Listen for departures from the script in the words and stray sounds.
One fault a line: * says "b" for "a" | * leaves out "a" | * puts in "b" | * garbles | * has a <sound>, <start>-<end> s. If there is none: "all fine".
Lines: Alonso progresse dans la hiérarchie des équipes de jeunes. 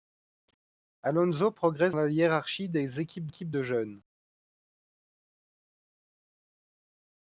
* leaves out "dans"
* puts in "équipes"